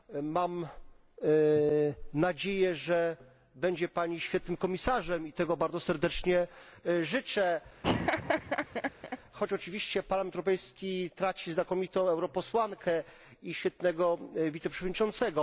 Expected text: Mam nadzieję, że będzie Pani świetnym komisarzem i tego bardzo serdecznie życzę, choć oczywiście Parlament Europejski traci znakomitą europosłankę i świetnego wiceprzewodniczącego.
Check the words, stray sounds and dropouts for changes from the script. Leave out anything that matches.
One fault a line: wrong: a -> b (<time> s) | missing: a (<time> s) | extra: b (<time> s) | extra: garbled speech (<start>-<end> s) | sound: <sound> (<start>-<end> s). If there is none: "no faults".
sound: laugh (7.8-9.2 s)